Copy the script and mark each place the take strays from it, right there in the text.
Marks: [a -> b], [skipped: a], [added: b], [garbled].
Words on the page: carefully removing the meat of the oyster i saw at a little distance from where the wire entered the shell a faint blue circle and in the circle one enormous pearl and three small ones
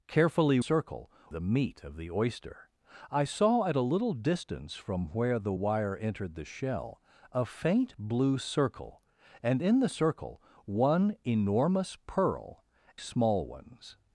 carefully [removing -> circle] the meat of the oyster i saw at a little distance from where the wire entered the shell a faint blue circle and in the circle one enormous pearl [skipped: and three] small ones